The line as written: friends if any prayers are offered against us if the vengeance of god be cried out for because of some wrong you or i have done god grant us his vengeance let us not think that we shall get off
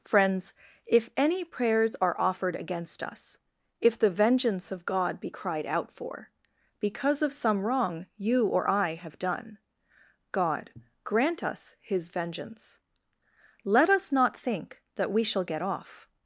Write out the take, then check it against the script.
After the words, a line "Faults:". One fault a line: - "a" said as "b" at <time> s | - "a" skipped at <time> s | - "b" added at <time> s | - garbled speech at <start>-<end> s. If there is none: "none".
friends if any prayers are offered against us if the vengeance of god be cried out for because of some wrong you or i have done god grant us his vengeance let us not think that we shall get off
Faults:
none